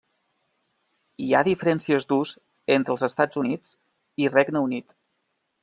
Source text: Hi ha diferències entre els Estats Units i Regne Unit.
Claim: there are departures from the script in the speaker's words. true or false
true